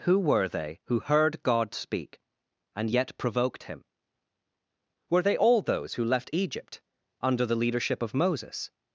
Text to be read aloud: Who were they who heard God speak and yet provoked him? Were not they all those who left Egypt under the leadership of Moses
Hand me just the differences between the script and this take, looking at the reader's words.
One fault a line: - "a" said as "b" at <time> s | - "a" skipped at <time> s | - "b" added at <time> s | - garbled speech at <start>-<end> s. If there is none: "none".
- "not" skipped at 5.2 s